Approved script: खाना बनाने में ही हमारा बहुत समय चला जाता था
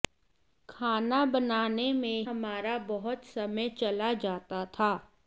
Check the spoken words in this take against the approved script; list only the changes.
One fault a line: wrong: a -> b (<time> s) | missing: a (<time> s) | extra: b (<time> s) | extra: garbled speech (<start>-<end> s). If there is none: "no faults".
missing: ही (2.2 s)